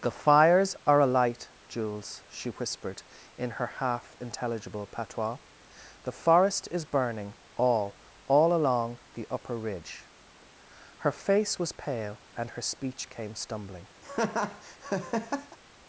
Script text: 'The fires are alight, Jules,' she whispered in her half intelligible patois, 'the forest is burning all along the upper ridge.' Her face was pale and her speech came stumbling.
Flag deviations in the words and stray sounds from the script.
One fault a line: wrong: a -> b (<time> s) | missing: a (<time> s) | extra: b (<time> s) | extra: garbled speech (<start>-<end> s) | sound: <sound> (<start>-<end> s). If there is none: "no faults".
extra: all (8.2 s)
sound: laugh (14.0-15.6 s)